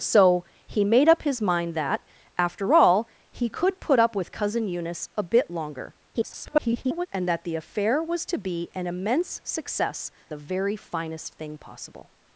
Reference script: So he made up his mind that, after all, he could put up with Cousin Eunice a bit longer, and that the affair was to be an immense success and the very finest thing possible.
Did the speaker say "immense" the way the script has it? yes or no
yes